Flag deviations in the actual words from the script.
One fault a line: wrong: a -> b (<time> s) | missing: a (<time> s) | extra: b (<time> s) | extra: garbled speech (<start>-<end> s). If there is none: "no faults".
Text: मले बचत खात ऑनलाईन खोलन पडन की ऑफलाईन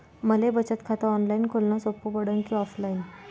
extra: सोपं (1.8 s)